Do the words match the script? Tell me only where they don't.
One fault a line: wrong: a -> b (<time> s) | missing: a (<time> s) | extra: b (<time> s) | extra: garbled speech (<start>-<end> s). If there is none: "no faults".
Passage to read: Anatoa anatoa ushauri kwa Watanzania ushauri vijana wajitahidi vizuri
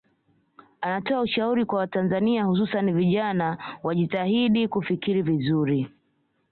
missing: anatoa (1.2 s)
wrong: ushauri -> hususani (2.4 s)
extra: kufikiri (4.7 s)